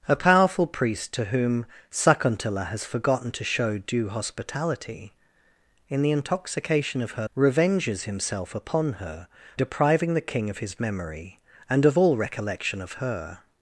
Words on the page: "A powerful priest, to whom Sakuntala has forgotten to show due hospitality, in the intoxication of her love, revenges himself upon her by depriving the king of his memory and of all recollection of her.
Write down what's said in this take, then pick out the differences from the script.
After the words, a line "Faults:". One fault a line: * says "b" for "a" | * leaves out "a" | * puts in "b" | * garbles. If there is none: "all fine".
"A powerful priest, to whom Sakuntala has forgotten to show due hospitality, in the intoxication of her revenges himself upon her depriving the king of his memory and of all recollection of her.
Faults:
* leaves out "love"
* leaves out "by"